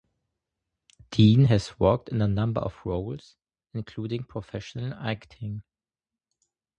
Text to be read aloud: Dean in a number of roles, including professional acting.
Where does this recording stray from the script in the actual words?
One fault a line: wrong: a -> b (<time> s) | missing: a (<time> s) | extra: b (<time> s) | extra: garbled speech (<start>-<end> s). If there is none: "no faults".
extra: has worked (1.4 s)